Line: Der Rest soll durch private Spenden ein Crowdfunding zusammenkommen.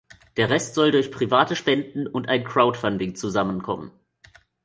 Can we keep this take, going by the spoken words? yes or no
no